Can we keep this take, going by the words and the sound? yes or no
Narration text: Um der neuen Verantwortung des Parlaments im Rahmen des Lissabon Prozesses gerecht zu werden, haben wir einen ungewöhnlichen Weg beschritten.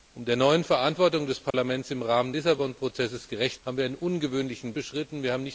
no